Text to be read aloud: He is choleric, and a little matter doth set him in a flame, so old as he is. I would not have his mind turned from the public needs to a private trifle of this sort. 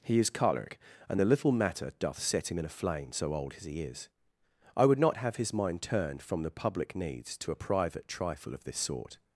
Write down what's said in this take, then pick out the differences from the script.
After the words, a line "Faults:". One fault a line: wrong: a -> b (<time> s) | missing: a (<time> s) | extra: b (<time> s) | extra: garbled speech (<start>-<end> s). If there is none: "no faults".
He is choleric, and the little matter doth set him in a flame, so old as he is. I would not have his mind turned from the public needs to a private trifle of this sort.
Faults:
wrong: a -> the (1.2 s)